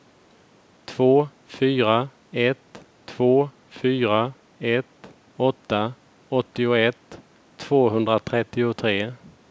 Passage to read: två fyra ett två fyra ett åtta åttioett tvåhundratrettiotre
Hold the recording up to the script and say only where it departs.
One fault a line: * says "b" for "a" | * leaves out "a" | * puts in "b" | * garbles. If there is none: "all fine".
all fine